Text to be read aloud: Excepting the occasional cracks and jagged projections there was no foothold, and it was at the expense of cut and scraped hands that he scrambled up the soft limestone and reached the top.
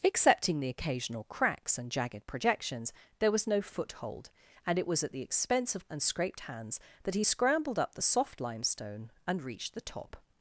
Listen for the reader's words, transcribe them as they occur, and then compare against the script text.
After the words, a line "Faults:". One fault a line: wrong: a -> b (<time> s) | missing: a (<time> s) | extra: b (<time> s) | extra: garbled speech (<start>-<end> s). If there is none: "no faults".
Excepting the occasional cracks and jagged projections there was no foothold, and it was at the expense of and scraped hands that he scrambled up the soft limestone and reached the top.
Faults:
missing: cut (5.9 s)